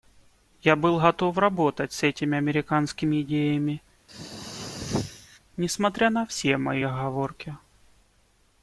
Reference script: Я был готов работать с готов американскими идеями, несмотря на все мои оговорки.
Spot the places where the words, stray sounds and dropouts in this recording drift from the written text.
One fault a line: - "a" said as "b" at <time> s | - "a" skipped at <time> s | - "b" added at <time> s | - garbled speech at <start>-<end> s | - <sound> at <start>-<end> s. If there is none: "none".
- "готов" said as "этими" at 2.0 s
- throat clearing at 4.1-5.4 s